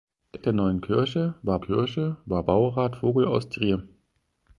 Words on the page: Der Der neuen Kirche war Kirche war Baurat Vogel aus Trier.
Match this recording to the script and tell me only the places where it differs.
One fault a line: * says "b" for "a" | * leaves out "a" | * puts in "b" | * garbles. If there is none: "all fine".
all fine